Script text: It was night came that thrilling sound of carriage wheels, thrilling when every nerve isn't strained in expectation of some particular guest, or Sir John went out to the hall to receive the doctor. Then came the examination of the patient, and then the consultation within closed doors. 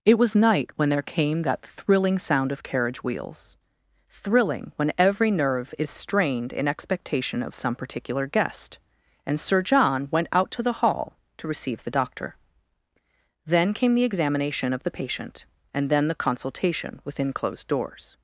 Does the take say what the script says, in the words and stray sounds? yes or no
no